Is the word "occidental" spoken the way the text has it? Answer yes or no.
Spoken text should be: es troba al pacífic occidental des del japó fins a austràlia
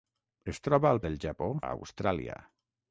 no